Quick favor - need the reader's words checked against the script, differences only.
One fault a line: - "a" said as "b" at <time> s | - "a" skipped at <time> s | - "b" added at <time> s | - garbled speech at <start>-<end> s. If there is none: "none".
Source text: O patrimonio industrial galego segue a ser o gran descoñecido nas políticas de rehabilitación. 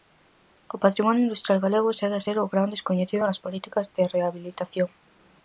none